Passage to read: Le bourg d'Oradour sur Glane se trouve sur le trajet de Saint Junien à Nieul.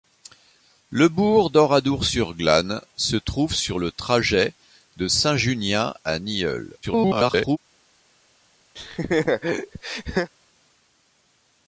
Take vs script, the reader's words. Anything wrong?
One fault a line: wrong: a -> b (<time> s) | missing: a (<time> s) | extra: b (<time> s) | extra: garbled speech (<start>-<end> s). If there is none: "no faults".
extra: garbled speech (6.8-7.6 s)